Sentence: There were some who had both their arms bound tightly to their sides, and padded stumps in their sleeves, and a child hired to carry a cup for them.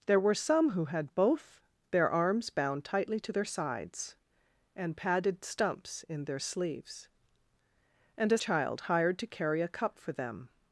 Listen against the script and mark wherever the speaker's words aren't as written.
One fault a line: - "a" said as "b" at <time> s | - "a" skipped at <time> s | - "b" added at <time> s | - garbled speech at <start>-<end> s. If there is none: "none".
none